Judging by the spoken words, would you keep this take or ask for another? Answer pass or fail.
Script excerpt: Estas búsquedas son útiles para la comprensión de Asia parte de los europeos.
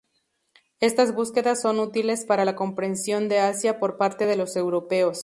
fail